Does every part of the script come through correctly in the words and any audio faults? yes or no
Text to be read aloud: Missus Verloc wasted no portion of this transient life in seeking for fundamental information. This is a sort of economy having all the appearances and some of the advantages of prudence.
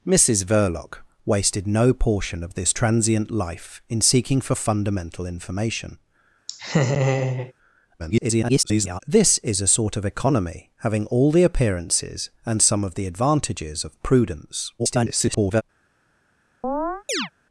no